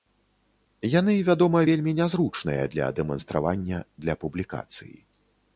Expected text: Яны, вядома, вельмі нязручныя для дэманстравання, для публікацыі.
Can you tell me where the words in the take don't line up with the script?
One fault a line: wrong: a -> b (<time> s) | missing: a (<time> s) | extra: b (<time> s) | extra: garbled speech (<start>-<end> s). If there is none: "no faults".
no faults